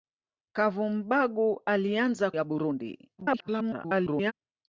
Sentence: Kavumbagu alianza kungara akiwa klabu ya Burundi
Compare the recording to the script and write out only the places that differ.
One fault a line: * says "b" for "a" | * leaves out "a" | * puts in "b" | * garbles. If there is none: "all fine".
* leaves out "kungara akiwa klabu"
* garbles